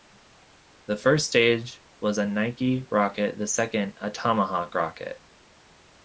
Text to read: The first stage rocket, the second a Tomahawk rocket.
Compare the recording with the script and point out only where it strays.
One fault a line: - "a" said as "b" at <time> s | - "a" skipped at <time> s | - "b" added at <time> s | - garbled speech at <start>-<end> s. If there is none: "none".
- "was a Nike" added at 2.0 s